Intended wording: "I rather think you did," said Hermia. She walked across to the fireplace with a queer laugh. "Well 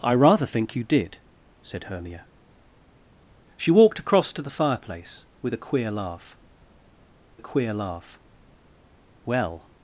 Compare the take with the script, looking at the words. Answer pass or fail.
fail